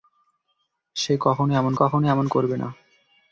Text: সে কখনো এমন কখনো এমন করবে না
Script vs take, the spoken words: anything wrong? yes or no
no